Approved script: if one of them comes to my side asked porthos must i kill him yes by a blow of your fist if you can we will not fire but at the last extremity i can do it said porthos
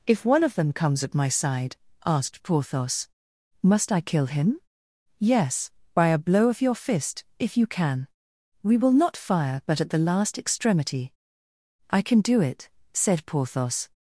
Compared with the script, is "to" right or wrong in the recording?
wrong